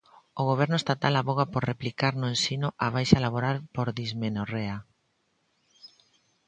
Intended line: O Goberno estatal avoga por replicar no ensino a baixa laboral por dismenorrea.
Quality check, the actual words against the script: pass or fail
pass